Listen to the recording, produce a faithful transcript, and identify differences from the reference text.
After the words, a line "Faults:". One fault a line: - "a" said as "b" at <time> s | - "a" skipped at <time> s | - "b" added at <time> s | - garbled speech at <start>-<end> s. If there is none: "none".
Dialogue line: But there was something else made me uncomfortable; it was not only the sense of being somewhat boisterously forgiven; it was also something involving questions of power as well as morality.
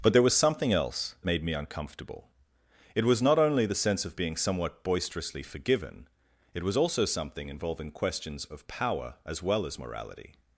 But there was something else made me uncomfortable; it was not only the sense of being somewhat boisterously forgiven; it was also something involving questions of power as well as morality.
Faults:
none